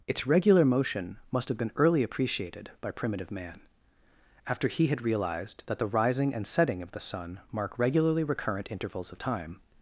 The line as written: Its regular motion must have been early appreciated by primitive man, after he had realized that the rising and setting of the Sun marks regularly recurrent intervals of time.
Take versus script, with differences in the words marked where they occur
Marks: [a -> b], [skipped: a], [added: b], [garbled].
Its regular motion must have been early appreciated by primitive man, after he had realized that the rising and setting of the Sun [marks -> mark] regularly recurrent intervals of time.